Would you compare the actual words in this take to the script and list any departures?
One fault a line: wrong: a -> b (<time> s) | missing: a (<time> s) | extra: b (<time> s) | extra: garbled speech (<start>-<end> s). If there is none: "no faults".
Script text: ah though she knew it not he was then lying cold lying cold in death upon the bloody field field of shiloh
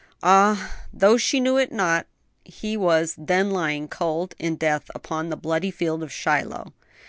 missing: lying cold (4.3 s)
missing: field (6.0 s)